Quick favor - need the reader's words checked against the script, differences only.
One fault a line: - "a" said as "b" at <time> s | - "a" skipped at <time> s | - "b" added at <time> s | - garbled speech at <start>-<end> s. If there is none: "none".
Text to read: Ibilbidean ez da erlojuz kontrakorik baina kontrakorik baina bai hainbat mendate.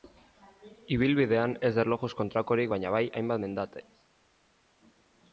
- "kontrakorik baina" skipped at 2.9 s